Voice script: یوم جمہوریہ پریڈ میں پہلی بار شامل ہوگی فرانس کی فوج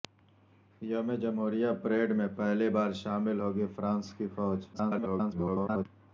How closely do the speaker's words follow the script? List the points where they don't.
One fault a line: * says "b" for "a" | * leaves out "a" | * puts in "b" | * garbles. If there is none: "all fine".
* garbles